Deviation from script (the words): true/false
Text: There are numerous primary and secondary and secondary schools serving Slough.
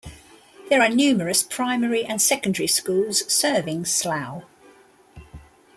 true